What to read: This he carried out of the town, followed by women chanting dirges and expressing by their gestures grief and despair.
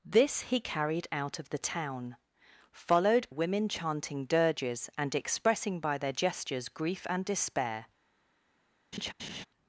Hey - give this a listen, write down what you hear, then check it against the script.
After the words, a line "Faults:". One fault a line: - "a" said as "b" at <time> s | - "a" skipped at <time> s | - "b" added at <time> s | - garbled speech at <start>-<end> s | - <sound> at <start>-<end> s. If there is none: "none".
This he carried out of the town, followed women chanting dirges and expressing by their gestures grief and despair.
Faults:
- "by" skipped at 3.3 s
- laugh at 8.9-9.5 s